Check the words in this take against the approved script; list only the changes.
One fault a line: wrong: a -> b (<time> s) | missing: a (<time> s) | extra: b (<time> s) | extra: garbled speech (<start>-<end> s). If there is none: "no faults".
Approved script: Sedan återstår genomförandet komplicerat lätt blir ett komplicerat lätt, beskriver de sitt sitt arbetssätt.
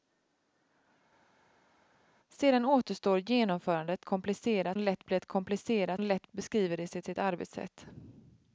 no faults